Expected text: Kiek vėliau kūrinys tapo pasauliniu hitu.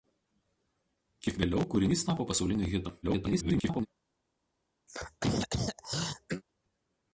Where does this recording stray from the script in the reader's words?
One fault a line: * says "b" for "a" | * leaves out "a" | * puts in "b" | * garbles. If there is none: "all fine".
* garbles